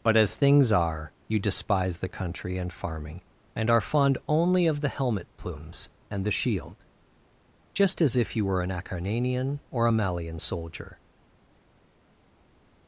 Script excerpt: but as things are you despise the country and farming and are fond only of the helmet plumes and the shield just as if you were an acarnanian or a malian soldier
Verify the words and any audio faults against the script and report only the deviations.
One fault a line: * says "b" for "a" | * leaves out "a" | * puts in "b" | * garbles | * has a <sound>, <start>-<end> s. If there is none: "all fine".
all fine